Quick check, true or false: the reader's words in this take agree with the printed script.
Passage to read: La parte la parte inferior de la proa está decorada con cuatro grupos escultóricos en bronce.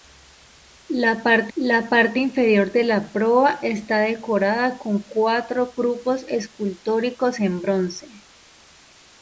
true